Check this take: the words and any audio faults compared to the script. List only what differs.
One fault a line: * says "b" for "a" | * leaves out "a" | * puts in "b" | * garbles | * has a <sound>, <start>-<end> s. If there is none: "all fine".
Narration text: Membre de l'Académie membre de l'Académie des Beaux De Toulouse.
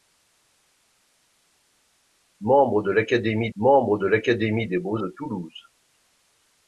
all fine